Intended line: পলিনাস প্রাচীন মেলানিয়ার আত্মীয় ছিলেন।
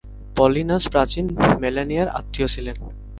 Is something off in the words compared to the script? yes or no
no